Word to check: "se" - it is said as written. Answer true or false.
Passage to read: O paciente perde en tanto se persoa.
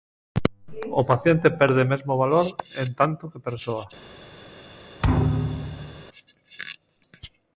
false